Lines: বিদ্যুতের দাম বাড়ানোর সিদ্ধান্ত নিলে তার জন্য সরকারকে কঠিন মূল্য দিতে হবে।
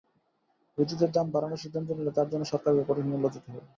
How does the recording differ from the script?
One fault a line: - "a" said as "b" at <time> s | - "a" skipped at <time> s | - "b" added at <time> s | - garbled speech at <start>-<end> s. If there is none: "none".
none